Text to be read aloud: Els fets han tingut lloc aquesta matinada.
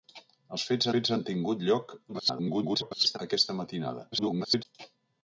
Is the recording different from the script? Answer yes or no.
yes